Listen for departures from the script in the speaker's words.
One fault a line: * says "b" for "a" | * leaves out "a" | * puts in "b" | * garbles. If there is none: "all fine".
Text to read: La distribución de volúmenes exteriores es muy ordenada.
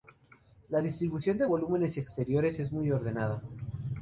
all fine